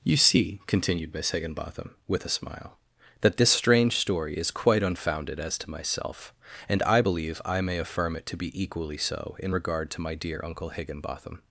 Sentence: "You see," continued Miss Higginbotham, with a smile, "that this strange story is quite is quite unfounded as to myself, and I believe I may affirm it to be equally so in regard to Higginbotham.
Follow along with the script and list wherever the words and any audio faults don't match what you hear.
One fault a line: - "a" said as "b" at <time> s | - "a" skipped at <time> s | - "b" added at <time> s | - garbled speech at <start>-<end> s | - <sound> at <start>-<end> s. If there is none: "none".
- "is quite" skipped at 4.8 s
- "my dear uncle" added at 10.0 s